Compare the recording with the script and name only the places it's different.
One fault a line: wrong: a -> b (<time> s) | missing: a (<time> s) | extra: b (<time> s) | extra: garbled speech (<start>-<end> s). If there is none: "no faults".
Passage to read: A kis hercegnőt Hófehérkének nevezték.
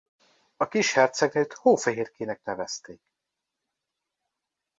no faults